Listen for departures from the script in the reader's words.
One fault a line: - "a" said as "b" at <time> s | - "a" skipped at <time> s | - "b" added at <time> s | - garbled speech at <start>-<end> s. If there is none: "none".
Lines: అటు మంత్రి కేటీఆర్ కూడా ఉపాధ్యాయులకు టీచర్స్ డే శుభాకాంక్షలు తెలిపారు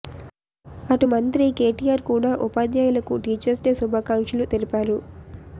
none